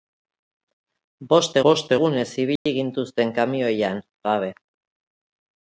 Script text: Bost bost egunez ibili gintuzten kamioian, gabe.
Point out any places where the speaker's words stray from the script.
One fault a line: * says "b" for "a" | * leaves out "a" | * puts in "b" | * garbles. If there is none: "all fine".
all fine